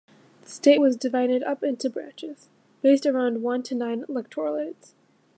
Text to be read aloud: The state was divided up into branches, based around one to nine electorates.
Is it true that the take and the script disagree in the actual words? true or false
false